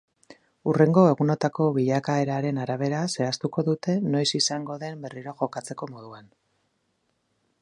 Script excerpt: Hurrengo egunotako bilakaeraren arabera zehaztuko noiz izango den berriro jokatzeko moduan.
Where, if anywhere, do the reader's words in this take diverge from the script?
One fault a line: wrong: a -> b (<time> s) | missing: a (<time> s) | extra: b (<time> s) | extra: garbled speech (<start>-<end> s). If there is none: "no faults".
extra: dute (3.7 s)